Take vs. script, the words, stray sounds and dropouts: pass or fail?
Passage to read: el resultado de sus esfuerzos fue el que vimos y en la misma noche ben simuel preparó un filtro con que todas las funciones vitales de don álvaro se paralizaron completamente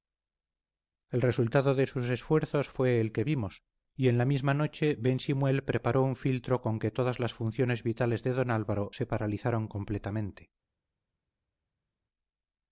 pass